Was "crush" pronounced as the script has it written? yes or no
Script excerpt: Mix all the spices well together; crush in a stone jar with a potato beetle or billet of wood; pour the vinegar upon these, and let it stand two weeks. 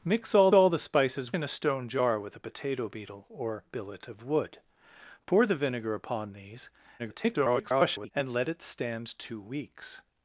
no